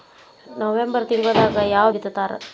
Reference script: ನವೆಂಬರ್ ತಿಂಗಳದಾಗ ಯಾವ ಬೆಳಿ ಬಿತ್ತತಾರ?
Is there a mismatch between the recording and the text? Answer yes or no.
yes